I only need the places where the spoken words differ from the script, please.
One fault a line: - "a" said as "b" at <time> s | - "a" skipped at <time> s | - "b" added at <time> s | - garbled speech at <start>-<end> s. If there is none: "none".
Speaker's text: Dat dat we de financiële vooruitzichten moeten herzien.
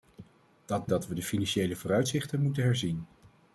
none